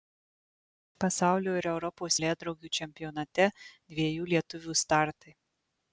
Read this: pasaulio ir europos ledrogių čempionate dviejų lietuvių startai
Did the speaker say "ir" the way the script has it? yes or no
yes